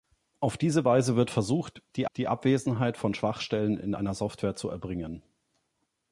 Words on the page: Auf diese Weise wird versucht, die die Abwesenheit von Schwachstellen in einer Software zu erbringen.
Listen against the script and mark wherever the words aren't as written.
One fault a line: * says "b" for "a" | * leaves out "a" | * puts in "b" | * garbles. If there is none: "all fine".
all fine